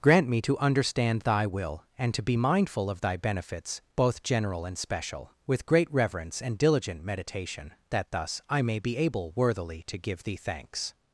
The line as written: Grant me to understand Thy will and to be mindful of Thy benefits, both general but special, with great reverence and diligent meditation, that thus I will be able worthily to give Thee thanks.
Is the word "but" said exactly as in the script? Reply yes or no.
no